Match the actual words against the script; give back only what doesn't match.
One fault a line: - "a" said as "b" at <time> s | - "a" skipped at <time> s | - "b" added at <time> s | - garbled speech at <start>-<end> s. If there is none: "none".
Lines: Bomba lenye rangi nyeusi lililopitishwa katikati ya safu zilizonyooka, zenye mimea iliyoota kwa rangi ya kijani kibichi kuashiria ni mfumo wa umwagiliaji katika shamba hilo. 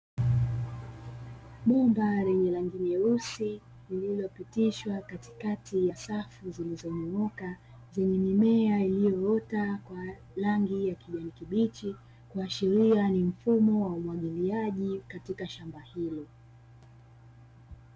none